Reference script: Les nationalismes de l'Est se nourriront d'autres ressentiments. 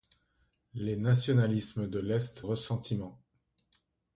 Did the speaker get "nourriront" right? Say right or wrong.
wrong